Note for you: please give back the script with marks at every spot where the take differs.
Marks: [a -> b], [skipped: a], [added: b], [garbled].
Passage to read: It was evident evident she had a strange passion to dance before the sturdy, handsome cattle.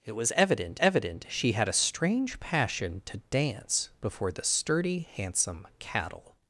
It was evident evident she had a strange passion to dance before the sturdy, handsome cattle.